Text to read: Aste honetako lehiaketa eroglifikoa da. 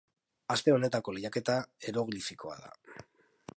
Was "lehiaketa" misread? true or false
false